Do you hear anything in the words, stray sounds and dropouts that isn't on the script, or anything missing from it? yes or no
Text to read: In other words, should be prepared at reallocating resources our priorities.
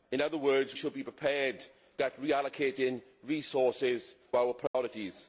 yes